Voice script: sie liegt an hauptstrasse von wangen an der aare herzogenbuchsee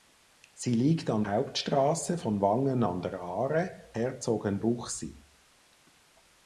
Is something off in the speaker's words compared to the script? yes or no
no